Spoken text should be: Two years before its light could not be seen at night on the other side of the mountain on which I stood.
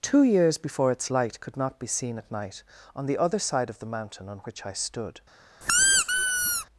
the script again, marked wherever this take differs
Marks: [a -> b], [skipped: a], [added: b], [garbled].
Two years before its light could not be seen at night on the other side of the mountain on which I stood.